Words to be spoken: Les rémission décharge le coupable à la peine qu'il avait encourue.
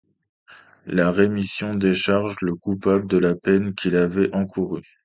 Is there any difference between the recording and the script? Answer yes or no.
yes